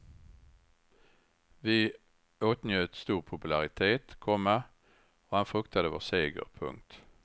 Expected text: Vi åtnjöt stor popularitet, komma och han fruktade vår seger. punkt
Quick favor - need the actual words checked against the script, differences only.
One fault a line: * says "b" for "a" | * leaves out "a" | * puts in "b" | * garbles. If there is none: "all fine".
all fine